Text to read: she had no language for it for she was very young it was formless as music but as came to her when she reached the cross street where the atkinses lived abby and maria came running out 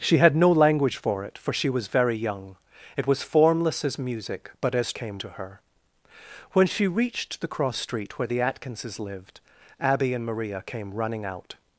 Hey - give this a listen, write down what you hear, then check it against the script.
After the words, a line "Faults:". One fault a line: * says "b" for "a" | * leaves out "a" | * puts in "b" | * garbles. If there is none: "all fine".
she had no language for it for she was very young it was formless as music but as came to her when she reached the cross street where the atkinses lived abby and maria came running out
Faults:
all fine